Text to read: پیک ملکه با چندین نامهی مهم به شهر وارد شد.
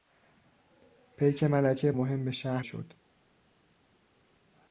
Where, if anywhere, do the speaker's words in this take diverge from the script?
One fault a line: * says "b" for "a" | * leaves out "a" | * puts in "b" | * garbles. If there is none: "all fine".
* leaves out "با چندین نامهی"
* leaves out "وارد"